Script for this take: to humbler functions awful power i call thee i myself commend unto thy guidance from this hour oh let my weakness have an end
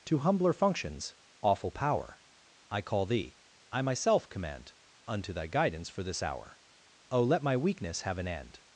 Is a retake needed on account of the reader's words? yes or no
yes